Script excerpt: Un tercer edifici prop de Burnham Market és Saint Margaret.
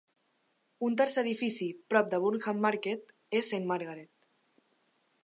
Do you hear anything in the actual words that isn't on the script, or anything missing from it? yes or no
no